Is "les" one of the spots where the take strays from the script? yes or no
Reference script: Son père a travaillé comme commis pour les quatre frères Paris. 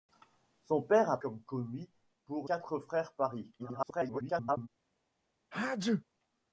yes